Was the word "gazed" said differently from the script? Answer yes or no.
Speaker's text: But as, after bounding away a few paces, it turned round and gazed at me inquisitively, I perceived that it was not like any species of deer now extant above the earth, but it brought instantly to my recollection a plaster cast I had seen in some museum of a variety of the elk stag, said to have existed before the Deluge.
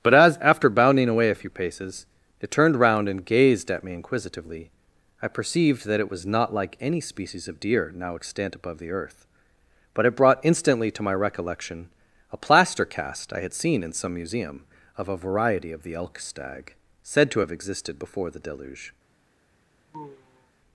no